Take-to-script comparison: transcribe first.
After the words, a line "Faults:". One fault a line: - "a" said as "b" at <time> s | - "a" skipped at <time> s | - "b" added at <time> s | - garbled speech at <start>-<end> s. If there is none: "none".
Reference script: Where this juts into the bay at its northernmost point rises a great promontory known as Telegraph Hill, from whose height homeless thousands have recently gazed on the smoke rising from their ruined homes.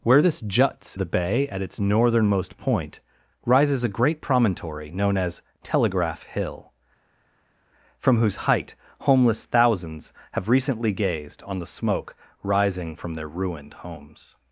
Where this juts the bay at its northernmost point rises a great promontory known as Telegraph Hill, from whose height homeless thousands have recently gazed on the smoke rising from their ruined homes.
Faults:
- "into" skipped at 1.0 s